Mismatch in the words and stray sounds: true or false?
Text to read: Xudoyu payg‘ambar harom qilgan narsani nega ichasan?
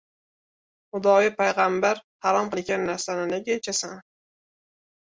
false